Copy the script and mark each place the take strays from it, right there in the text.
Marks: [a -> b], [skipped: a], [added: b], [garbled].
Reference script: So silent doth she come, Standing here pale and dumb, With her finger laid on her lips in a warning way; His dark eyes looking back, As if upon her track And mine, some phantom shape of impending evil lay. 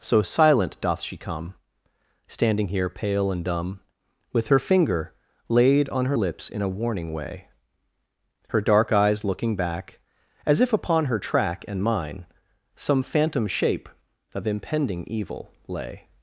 So silent doth she come, Standing here pale and dumb, With her finger laid on her lips in a warning way; [His -> Her] dark eyes looking back, As if upon her track And mine, some phantom shape of impending evil lay.